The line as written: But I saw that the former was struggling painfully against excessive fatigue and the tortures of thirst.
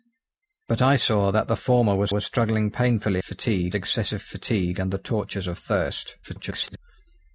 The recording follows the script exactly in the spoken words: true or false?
false